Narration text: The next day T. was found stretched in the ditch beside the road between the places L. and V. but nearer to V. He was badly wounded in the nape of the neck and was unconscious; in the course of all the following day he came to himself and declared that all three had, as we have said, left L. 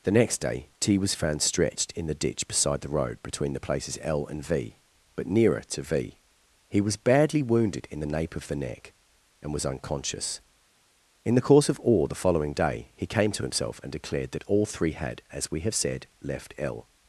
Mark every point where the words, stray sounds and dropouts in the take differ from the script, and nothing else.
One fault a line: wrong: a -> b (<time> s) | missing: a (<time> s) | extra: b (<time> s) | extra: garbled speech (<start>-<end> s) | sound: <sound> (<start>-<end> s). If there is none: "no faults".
no faults